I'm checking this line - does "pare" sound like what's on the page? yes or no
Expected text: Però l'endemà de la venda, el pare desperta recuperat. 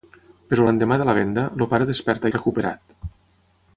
yes